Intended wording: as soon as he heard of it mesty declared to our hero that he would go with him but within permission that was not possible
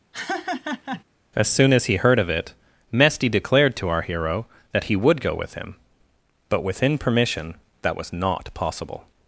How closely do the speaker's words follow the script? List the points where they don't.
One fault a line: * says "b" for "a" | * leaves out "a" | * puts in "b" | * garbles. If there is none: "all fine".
all fine